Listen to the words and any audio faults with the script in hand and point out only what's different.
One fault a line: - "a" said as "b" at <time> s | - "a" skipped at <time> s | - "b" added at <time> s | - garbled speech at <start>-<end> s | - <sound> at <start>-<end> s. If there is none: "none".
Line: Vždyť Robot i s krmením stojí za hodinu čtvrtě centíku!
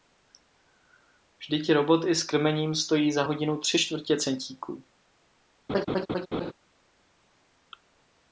- "tři" added at 3.6 s
- laugh at 5.7-6.5 s